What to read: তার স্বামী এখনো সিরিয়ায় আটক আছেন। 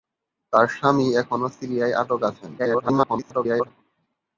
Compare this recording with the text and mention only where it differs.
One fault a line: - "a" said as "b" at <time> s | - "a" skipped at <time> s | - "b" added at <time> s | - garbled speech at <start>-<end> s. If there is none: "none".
- garbled speech at 2.6-3.7 s